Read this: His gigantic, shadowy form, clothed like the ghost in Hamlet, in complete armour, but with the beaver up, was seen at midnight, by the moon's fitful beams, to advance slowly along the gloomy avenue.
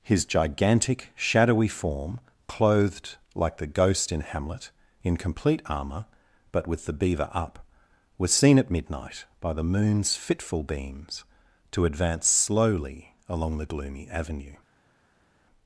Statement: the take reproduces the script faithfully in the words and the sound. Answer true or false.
true